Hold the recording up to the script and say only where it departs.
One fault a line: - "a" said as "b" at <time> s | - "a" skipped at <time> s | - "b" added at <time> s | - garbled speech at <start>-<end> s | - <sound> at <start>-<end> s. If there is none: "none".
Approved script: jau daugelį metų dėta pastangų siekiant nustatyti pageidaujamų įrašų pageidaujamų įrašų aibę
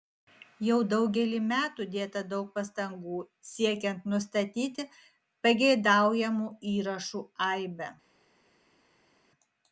- "daug" added at 2.3 s
- "pageidaujamų įrašų" skipped at 7.2 s